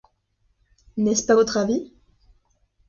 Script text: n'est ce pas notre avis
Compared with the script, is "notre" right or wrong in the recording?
wrong